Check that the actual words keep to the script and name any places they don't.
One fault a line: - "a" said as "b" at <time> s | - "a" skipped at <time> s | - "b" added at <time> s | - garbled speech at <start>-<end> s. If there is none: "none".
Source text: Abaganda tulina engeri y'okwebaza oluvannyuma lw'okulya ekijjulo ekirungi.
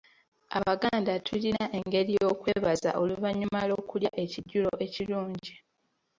none